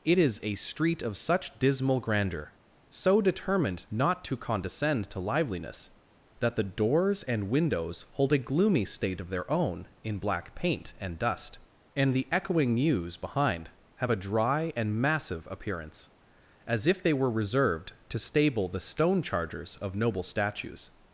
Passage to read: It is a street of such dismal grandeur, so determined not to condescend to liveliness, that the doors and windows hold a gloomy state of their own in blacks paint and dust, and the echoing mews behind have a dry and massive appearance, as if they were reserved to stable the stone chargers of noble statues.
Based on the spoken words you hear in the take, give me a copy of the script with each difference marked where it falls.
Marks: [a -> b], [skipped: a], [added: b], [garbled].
It is a street of such dismal grandeur, so determined not to condescend to liveliness, that the doors and windows hold a gloomy state of their own in [blacks -> black] paint and dust, and the echoing mews behind have a dry and massive appearance, as if they were reserved to stable the stone chargers of noble statues.